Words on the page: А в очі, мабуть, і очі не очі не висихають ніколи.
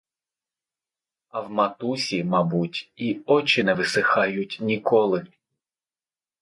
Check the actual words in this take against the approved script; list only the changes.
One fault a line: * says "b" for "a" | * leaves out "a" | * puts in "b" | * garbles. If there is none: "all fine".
* says "матусі" for "очі"
* leaves out "очі не"